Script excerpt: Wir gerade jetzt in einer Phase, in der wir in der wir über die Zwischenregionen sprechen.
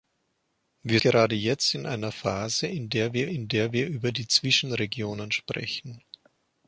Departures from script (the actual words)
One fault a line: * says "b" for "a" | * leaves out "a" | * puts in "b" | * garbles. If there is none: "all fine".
all fine